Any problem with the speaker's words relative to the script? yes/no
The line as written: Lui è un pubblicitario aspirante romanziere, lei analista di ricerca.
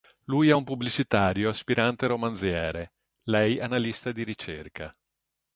no